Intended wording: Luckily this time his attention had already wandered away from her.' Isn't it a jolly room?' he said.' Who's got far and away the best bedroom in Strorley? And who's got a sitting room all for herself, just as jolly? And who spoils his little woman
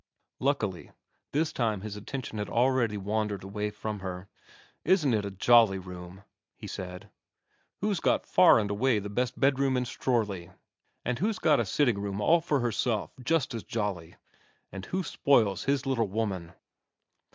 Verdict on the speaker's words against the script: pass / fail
pass